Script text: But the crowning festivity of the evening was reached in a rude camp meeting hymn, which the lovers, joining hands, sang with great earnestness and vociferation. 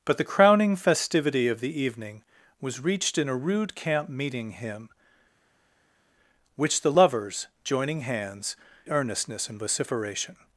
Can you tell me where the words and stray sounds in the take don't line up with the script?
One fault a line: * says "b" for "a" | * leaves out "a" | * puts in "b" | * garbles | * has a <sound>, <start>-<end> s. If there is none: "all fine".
* leaves out "sang with great"